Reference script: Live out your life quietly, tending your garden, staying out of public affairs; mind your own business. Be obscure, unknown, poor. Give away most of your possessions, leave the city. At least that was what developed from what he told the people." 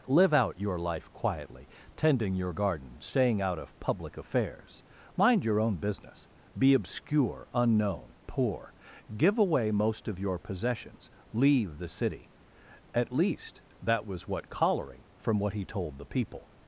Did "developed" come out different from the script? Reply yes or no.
yes